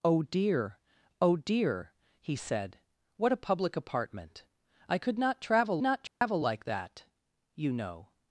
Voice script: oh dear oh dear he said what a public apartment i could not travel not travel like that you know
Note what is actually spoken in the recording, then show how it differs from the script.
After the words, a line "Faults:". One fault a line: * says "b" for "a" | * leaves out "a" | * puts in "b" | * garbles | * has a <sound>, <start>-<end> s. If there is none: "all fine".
oh dear oh dear he said what a public apartment i could not travel not travel like that you know
Faults:
* has a dropout, 6.1-6.2 s